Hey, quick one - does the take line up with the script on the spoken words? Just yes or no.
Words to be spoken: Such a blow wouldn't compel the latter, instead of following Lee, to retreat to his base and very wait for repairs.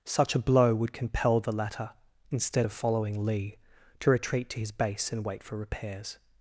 no